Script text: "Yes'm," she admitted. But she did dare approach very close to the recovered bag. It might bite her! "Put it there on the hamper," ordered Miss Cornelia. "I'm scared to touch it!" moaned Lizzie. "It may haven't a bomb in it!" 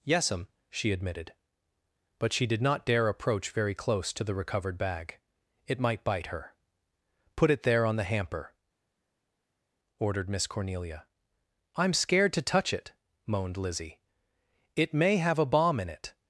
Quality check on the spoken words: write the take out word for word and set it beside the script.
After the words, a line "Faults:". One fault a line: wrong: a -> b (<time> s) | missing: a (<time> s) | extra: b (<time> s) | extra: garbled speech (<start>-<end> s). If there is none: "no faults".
"Yes'm," she admitted. But she did not dare approach very close to the recovered bag. It might bite her! "Put it there on the hamper," ordered Miss Cornelia. "I'm scared to touch it!" moaned Lizzie. "It may have a bomb in it!"
Faults:
extra: not (2.6 s)
wrong: haven't -> have (15.2 s)